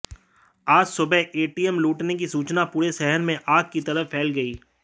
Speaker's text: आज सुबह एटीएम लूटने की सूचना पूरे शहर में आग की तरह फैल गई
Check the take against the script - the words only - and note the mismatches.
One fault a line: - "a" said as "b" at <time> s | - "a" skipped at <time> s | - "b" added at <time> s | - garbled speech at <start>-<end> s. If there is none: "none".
none